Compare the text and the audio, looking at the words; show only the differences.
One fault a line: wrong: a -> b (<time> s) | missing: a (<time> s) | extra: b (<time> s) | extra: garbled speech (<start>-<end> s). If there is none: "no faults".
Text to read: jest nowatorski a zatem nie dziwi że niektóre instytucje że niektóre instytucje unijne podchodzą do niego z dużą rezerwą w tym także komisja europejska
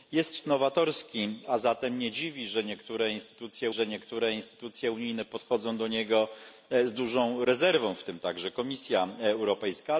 no faults